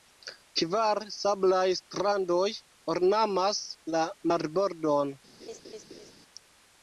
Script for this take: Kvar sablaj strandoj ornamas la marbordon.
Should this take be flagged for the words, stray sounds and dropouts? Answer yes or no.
yes